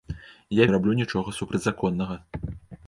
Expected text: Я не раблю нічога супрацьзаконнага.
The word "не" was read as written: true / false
true